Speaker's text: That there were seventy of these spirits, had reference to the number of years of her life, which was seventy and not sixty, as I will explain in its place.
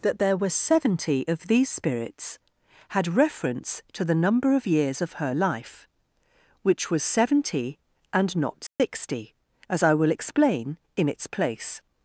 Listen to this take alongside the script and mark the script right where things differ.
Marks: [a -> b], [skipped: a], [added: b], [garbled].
That there were seventy of these spirits, had reference to the number of years of her life, which was seventy and not sixty, as I will explain in its place.